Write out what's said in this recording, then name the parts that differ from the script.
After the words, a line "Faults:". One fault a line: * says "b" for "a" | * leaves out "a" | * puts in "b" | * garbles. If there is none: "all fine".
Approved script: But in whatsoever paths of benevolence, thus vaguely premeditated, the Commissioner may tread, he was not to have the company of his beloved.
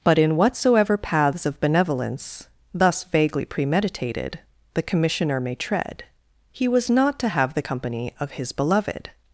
But in whatsoever paths of benevolence, thus vaguely premeditated, the Commissioner may tread, he was not to have the company of his beloved.
Faults:
all fine